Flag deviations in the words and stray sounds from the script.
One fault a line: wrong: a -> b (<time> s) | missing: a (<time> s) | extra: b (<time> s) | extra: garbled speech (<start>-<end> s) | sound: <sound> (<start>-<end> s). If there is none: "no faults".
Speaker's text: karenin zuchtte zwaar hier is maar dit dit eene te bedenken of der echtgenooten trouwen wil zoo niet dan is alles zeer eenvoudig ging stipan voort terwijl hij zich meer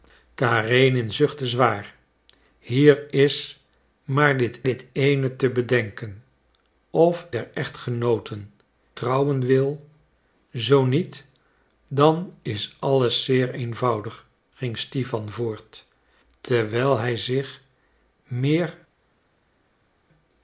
no faults